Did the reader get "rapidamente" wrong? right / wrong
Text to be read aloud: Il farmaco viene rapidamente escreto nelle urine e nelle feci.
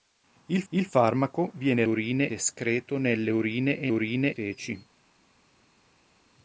wrong